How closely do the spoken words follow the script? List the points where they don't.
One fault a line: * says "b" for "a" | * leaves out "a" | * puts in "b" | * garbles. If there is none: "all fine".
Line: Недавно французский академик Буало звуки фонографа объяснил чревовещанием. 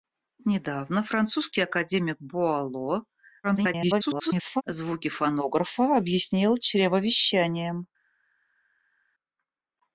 * garbles